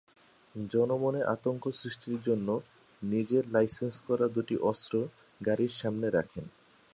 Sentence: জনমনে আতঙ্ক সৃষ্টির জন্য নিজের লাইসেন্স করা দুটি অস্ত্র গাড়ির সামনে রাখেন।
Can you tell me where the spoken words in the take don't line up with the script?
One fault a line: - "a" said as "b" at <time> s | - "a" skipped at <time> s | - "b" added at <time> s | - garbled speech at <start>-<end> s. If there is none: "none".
none